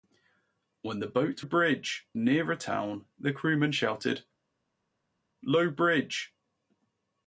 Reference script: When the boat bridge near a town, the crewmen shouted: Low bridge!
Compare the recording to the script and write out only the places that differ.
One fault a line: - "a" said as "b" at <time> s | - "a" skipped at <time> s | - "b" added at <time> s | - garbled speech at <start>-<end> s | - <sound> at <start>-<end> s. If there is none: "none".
none